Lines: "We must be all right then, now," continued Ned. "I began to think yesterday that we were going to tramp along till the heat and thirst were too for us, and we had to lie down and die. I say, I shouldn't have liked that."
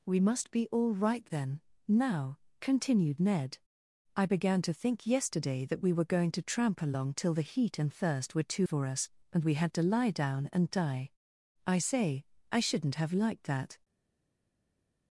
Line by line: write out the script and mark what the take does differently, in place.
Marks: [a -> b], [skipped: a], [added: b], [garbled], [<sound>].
"We must be all right then, now," continued Ned. "I began to think yesterday that we were going to tramp along till the heat and thirst were too for us, and we had to lie down and die. I say, I shouldn't have liked that."